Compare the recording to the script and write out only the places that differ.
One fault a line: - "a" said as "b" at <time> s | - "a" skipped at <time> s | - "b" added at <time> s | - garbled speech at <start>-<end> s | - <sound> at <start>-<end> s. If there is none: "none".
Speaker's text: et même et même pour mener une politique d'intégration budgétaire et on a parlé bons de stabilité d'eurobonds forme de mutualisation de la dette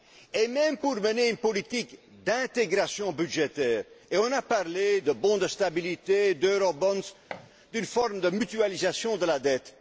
- "et même" skipped at 0.8 s
- "de" added at 5.0 s
- thud at 7.3-7.5 s
- "d'une" added at 7.7 s